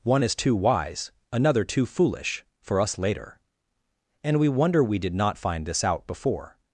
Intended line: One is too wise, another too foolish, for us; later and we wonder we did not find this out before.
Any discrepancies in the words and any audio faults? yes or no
no